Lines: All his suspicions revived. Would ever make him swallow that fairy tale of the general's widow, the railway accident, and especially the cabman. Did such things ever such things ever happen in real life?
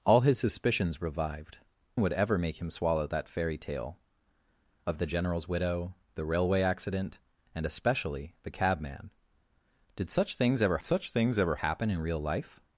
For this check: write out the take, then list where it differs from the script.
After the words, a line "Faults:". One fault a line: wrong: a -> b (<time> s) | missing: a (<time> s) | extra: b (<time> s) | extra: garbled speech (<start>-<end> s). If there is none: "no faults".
All his suspicions revived. Would ever make him swallow that fairy tale of the general's widow, the railway accident, and especially the cabman. Did such things ever such things ever happen in real life?
Faults:
no faults